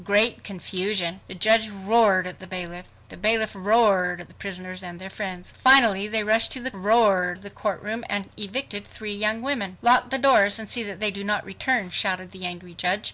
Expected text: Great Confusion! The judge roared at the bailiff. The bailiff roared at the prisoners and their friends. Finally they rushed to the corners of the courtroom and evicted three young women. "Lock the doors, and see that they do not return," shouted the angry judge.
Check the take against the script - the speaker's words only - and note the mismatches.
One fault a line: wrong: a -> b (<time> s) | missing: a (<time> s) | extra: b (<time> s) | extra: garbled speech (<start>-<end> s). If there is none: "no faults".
wrong: corners -> roared (6.7 s)